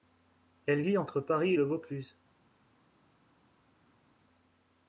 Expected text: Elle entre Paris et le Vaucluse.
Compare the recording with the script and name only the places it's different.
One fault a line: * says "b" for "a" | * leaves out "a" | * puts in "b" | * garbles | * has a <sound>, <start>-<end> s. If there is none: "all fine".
* puts in "vit"